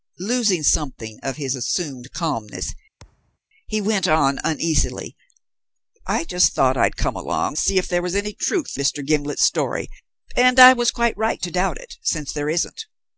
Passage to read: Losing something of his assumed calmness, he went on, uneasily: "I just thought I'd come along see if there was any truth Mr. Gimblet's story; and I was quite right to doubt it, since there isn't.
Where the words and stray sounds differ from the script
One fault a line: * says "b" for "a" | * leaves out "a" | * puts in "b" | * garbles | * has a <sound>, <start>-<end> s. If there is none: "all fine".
* has a thud, 3.0-3.4 s